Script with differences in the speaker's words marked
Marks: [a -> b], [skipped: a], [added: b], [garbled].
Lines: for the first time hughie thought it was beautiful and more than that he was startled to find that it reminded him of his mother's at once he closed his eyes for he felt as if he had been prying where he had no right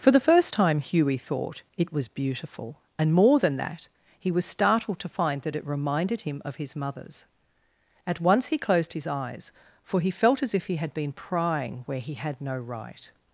for the first time hughie thought it was beautiful and more than that he was startled to find that it reminded him of his mother's at once he closed his eyes for he felt as if he had been prying where he had no right